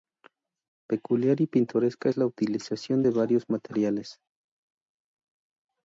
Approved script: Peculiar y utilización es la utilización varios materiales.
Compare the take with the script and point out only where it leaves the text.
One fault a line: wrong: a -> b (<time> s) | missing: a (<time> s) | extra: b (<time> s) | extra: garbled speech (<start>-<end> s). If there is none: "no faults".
wrong: utilización -> pintoresca (1.4 s)
extra: de (3.0 s)